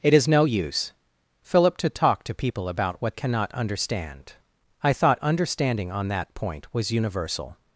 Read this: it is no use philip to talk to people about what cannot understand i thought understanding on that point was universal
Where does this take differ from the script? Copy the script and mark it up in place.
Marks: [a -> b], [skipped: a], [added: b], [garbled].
it is no use philip to talk to people about what cannot understand i thought understanding on that point was universal